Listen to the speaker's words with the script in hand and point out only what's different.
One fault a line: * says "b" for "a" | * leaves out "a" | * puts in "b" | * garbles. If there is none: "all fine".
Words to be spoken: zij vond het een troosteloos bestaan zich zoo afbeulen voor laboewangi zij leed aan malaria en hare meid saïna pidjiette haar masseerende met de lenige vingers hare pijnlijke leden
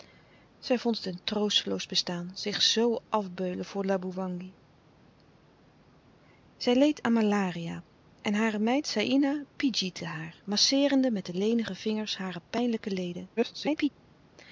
* garbles